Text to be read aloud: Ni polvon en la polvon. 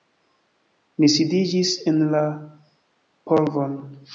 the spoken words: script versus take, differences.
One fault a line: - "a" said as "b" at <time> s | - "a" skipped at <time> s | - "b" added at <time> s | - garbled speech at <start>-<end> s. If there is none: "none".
- "polvon" said as "sidiĝis" at 1.2 s